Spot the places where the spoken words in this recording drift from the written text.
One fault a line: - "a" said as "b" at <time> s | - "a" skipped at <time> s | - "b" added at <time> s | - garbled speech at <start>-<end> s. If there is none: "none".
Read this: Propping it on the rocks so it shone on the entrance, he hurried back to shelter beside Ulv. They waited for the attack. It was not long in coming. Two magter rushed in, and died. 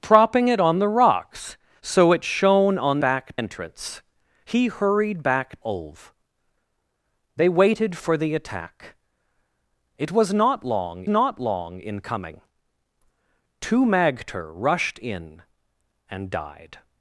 - "the" said as "back" at 3.0 s
- "to shelter beside" skipped at 5.6 s
- "not long" added at 11.1 s